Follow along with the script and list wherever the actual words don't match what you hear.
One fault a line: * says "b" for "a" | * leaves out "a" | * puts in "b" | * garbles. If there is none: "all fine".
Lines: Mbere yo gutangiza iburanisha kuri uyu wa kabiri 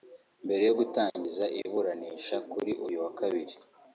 all fine